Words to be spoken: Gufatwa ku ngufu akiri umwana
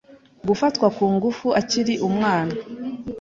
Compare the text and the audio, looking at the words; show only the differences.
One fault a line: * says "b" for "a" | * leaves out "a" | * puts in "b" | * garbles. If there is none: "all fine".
all fine